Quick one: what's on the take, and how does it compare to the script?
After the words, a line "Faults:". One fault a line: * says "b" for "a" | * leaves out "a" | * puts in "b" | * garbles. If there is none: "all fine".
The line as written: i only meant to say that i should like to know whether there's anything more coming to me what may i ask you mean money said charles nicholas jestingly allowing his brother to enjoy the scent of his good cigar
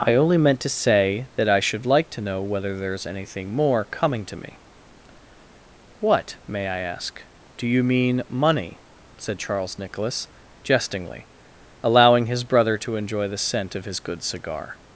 i only meant to say that i should like to know whether there's anything more coming to me what may i ask do you mean money said charles nicholas jestingly allowing his brother to enjoy the scent of his good cigar
Faults:
* puts in "do"